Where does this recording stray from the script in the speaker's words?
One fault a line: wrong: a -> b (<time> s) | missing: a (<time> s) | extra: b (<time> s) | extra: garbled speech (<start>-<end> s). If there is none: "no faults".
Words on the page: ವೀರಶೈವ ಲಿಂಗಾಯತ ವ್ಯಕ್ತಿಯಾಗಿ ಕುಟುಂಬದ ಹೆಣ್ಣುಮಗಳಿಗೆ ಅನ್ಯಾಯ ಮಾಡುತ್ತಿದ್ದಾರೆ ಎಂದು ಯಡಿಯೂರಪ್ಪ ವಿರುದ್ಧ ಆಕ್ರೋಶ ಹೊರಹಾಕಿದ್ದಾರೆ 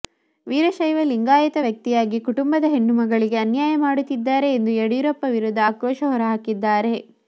no faults